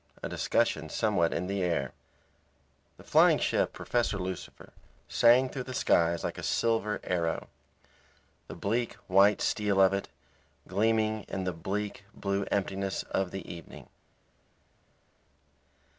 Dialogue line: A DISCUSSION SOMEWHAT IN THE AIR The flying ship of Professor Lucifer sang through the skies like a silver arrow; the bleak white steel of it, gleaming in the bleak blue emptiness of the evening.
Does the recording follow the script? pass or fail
fail